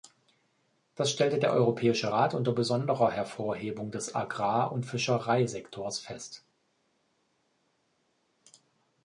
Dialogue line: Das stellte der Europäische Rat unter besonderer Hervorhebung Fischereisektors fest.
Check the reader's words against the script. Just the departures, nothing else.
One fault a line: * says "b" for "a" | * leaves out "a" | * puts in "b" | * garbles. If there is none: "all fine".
* puts in "des Agrar und"